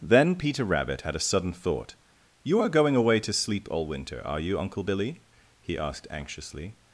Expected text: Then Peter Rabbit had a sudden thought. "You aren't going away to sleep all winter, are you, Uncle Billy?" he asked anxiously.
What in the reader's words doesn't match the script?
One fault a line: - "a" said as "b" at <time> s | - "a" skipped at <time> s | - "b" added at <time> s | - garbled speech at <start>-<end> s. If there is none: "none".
- "aren't" said as "are" at 2.6 s